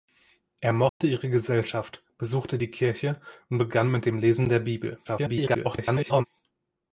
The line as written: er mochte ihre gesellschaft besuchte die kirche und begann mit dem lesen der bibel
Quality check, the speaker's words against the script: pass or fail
fail